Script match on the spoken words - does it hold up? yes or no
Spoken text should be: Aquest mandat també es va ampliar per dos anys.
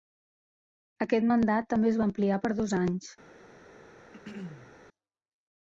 yes